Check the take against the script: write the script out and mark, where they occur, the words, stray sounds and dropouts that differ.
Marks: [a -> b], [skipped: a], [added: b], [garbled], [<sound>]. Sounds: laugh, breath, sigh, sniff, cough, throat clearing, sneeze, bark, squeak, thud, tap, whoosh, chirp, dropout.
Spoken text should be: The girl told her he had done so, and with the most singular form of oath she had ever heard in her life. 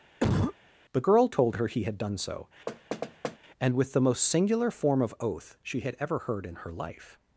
[cough] The girl told her he had done so, [thud] and with the most singular form of oath she had ever heard in her life.